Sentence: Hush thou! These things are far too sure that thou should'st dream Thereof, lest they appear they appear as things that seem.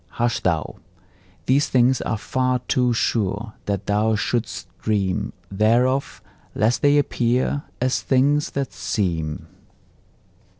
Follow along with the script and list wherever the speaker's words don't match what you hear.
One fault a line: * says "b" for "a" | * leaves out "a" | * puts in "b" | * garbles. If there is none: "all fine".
* leaves out "they appear"